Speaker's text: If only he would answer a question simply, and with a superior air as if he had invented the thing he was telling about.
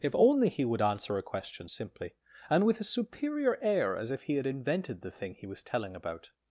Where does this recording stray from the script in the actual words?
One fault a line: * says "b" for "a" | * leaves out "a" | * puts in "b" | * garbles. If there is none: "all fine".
all fine